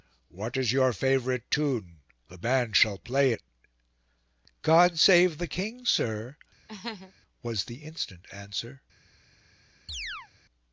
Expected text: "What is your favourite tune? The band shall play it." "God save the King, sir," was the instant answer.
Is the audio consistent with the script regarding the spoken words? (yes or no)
yes